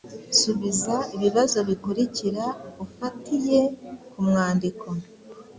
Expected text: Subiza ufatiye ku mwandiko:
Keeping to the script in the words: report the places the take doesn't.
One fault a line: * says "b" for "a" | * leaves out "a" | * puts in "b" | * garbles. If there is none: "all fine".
* puts in "ibibazo bikurikira"